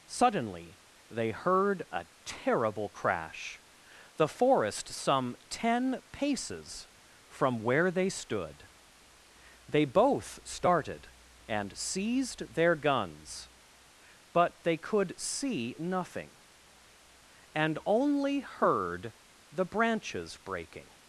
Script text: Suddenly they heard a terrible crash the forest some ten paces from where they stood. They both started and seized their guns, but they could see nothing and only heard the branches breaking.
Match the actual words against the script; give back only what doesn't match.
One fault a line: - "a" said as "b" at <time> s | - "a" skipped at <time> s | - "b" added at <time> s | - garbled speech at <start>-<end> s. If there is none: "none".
none